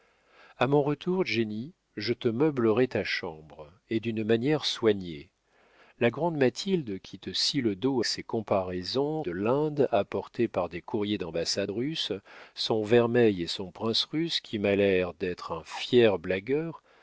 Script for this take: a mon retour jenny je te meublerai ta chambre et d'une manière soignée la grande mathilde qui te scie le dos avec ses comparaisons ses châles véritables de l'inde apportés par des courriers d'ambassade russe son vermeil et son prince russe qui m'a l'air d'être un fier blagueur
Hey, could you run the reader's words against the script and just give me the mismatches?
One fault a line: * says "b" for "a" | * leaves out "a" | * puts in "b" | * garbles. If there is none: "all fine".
* leaves out "avec"
* leaves out "ses châles véritables"